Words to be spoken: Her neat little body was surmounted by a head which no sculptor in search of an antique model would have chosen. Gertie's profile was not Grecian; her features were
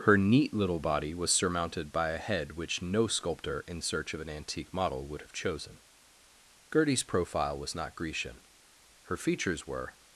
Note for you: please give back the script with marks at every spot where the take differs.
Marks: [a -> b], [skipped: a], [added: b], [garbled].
Her neat little body was surmounted by a head which no sculptor in search of an antique model would have chosen. Gertie's profile was not Grecian; her features were